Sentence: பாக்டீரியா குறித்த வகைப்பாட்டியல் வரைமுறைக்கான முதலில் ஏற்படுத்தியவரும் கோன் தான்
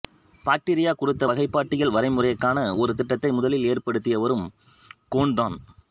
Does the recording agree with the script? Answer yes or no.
no